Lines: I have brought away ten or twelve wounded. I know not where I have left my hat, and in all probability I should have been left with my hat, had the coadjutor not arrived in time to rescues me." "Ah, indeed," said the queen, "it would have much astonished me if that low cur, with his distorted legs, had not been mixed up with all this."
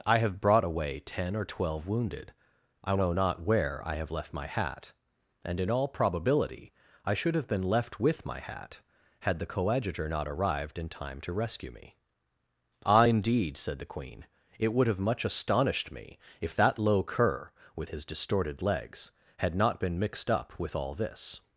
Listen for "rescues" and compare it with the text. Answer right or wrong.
wrong